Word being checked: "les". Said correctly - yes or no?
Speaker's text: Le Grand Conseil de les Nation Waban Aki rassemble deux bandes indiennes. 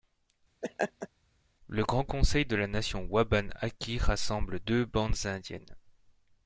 no